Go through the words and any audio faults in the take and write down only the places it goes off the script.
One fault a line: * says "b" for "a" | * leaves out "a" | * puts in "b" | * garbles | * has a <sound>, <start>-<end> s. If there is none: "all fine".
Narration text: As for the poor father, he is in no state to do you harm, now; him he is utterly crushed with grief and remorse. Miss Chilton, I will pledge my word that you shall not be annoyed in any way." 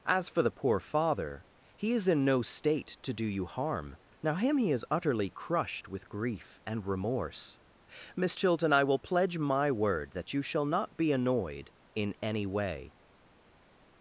all fine